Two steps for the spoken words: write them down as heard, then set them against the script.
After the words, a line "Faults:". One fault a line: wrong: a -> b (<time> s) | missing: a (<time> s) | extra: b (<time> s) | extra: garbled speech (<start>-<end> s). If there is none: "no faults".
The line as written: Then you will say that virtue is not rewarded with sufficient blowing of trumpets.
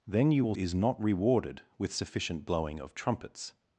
Then you will is not rewarded with sufficient blowing of trumpets.
Faults:
missing: say that virtue (0.6 s)